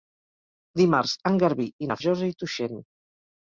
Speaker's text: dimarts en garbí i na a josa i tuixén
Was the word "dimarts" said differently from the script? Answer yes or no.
no